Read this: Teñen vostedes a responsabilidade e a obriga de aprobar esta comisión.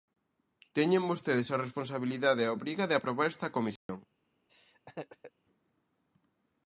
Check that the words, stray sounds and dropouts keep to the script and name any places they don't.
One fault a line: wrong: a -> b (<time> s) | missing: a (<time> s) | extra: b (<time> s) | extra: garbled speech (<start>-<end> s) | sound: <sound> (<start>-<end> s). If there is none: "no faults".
sound: dropout (3.8-3.9 s)
sound: laugh (4.5-5.3 s)